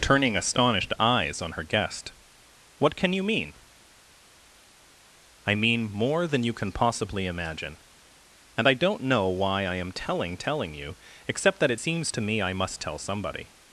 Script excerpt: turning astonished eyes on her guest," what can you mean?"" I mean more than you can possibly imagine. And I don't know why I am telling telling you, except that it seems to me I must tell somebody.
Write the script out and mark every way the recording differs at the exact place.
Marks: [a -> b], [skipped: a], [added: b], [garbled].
turning astonished eyes on her guest," what can you mean?"" I mean more than you can possibly imagine. And I don't know why I am telling telling you, except that it seems to me I must tell somebody.